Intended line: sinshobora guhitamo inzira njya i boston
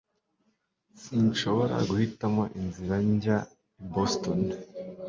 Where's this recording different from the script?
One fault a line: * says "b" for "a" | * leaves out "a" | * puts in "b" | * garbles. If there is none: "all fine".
all fine